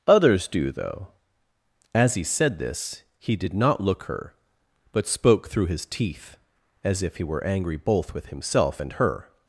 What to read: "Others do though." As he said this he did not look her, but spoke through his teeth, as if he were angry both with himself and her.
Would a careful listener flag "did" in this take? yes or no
no